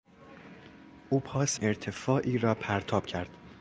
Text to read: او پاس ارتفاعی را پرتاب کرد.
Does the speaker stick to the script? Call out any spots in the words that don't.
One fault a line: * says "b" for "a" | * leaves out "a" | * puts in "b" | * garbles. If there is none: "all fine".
all fine